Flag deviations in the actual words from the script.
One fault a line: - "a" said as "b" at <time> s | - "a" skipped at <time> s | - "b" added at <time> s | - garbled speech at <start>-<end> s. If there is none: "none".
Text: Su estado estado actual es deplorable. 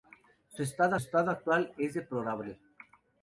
none